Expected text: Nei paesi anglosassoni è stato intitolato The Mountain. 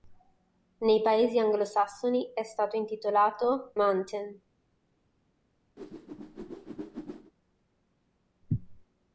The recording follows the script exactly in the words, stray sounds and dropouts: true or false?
false